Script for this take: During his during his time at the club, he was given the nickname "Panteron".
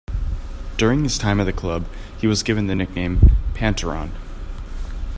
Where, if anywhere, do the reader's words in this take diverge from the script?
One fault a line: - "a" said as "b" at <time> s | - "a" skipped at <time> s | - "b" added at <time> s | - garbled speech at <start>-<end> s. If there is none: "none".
- "during his" skipped at 1.2 s